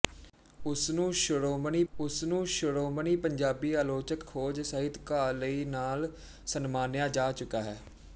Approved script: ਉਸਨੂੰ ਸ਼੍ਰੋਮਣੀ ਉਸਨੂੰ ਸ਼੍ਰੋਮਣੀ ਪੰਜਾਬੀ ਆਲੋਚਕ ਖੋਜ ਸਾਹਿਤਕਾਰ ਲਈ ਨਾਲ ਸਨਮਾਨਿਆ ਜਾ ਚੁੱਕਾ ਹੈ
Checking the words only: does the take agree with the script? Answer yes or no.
yes